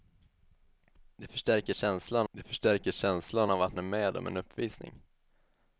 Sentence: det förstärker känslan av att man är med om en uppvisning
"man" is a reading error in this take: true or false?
true